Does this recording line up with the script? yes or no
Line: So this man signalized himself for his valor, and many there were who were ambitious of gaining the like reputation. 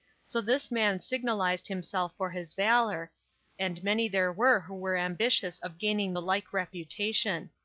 yes